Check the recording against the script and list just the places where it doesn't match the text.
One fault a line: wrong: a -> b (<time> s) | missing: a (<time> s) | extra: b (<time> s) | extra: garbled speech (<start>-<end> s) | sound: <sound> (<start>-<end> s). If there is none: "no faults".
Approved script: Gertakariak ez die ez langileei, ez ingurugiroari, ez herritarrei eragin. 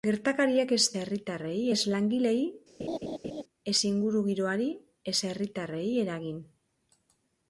wrong: die -> herritarrei (1.0 s)
sound: laugh (2.8-3.4 s)